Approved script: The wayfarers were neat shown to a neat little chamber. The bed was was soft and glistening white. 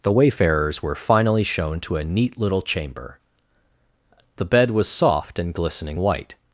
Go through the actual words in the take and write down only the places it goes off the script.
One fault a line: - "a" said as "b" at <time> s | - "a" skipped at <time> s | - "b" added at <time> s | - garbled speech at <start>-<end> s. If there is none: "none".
- "neat" said as "finally" at 0.9 s
- "was" skipped at 4.9 s